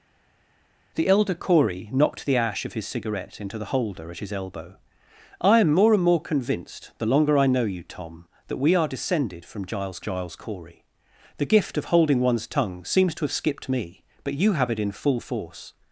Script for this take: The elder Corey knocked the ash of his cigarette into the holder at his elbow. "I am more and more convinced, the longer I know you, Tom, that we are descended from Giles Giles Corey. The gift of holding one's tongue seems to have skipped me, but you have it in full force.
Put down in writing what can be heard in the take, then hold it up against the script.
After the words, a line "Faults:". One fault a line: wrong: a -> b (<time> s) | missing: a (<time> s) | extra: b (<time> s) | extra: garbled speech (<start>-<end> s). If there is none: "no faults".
The elder Corey knocked the ash of his cigarette into the holder at his elbow. "I am more and more convinced, the longer I know you, Tom, that we are descended from Giles Giles Corey. The gift of holding one's tongue seems to have skipped me, but you have it in full force.
Faults:
no faults